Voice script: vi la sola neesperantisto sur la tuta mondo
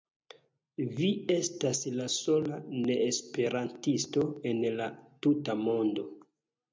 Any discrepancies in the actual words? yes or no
yes